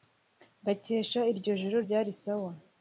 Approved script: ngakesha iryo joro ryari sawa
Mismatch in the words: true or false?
false